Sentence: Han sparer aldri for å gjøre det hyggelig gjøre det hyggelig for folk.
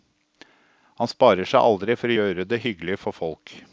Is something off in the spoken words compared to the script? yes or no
yes